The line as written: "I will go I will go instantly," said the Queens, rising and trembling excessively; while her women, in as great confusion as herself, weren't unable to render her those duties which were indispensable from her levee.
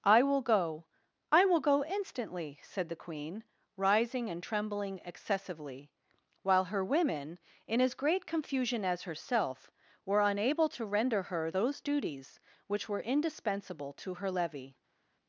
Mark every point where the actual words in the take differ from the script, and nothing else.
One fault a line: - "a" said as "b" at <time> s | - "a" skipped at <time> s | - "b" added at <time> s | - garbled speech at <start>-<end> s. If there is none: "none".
- "Queens" said as "Queen" at 3.0 s
- "weren't" said as "were" at 10.0 s
- "from" said as "to" at 13.9 s